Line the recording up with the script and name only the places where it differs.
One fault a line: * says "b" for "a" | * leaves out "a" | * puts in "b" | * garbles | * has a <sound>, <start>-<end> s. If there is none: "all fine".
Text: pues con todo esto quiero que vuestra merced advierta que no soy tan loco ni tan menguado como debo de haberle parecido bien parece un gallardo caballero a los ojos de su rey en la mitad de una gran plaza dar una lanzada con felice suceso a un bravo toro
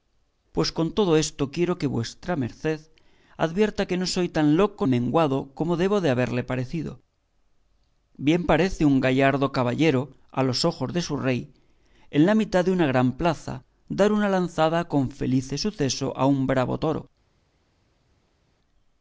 * leaves out "ni tan"